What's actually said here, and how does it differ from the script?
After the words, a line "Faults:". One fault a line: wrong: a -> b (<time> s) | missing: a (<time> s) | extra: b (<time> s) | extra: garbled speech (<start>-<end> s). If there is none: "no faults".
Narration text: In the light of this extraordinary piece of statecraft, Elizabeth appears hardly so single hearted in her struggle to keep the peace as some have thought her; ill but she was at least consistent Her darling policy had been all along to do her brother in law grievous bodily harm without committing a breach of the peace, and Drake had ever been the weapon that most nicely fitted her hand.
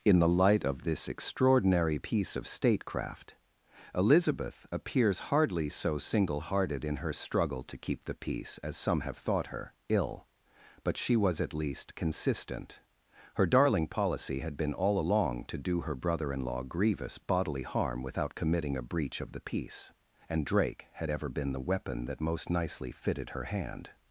In the light of this extraordinary piece of statecraft, Elizabeth appears hardly so single hearted in her struggle to keep the peace as some have thought her; ill but she was at least consistent Her darling policy had been all along to do her brother in law grievous bodily harm without committing a breach of the peace, and Drake had ever been the weapon that most nicely fitted her hand.
Faults:
no faults